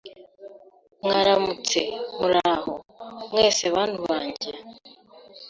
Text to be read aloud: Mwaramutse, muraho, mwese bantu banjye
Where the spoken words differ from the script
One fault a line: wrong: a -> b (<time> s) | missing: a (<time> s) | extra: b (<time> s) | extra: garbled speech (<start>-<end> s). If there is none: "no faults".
no faults